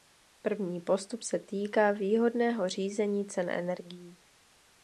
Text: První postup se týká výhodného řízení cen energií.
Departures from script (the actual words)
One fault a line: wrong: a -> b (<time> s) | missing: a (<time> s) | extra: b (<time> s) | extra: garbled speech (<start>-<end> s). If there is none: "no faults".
no faults